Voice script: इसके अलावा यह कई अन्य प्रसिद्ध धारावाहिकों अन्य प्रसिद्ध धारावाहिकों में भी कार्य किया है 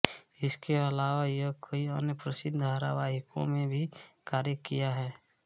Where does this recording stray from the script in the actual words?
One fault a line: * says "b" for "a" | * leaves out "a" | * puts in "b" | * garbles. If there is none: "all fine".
* leaves out "अन्य प्रसिद्ध धारावाहिकों"